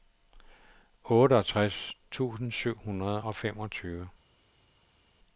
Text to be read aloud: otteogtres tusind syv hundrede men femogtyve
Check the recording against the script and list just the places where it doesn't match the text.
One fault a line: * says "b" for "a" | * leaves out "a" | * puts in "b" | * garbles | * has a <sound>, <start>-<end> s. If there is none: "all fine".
* says "og" for "men"